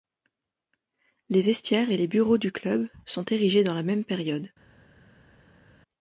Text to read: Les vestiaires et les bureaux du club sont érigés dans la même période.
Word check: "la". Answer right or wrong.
right